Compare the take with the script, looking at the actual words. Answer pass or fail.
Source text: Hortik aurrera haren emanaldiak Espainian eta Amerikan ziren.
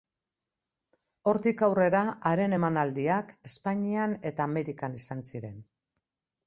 fail